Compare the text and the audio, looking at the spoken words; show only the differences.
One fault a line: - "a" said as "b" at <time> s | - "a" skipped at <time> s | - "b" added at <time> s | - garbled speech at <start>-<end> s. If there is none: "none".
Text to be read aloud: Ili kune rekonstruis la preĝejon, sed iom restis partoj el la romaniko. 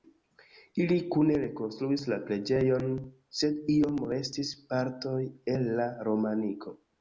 none